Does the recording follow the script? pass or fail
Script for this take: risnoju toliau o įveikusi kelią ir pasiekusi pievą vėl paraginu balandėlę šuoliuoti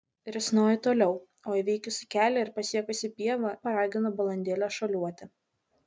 fail